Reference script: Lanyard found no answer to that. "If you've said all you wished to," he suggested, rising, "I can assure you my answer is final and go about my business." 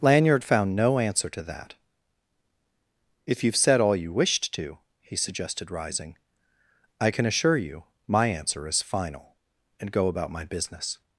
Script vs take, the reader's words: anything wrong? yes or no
no